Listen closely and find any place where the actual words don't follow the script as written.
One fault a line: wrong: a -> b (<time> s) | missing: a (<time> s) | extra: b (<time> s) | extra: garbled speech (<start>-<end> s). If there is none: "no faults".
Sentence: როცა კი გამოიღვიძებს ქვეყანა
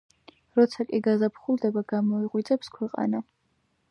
extra: გაზაფხულდება (1.1 s)